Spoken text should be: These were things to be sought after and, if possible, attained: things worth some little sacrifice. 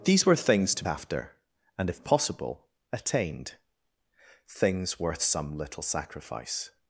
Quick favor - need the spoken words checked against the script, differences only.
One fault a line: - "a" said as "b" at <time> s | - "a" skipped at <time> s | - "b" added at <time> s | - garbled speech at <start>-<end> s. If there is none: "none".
- "be sought" skipped at 0.8 s